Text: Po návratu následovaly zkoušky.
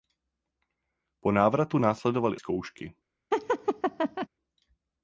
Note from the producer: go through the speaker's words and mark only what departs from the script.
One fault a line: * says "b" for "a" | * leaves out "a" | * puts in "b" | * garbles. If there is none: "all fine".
all fine